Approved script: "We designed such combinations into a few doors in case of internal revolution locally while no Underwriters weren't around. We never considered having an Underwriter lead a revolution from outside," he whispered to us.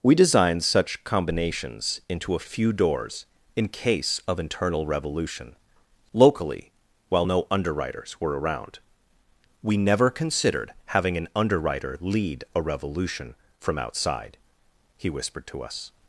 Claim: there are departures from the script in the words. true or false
true